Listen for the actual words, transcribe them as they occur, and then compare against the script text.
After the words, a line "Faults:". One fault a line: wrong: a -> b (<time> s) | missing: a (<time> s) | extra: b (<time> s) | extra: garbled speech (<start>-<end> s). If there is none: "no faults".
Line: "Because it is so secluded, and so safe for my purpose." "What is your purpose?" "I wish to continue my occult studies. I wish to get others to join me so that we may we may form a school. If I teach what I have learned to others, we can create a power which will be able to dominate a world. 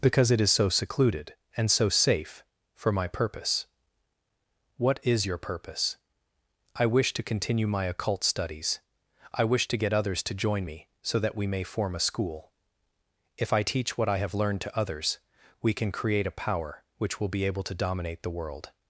"Because it is so secluded, and so safe for my purpose." "What is your purpose?" "I wish to continue my occult studies. I wish to get others to join me so that we may form a school. If I teach what I have learned to others, we can create a power which will be able to dominate the world.
Faults:
missing: we may (11.6 s)
wrong: a -> the (18.2 s)